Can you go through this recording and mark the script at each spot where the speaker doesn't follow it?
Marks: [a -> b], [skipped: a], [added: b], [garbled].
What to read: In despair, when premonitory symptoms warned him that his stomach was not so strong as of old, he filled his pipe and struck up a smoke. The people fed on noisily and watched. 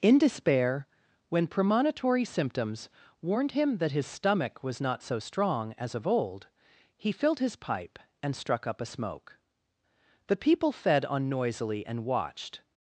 In despair, when premonitory symptoms warned him that his stomach was not so strong as of old, he filled his pipe and struck up a smoke. The people fed on noisily and watched.